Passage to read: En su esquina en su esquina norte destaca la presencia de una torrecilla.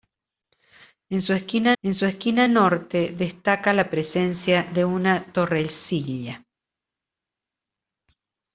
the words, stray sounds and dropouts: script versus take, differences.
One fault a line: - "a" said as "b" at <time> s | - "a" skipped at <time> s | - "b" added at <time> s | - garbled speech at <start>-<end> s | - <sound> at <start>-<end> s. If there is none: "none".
none